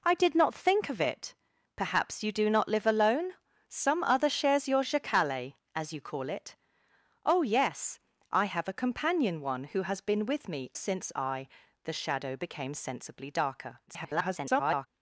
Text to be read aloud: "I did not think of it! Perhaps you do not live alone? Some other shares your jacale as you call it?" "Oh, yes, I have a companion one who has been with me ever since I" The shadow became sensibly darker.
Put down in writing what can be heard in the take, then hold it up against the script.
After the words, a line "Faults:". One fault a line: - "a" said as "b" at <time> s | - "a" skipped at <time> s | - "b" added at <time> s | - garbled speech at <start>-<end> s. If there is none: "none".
"I did not think of it! Perhaps you do not live alone? Some other shares your jacale as you call it?" "Oh, yes, I have a companion one who has been with me since I" The shadow became sensibly darker. [garbled]
Faults:
- "ever" skipped at 10.7 s
- garbled speech at 13.9-14.9 s